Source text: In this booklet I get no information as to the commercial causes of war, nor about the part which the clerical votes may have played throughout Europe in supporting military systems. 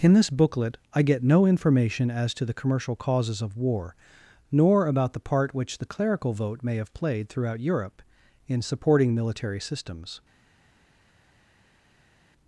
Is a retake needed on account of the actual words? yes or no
yes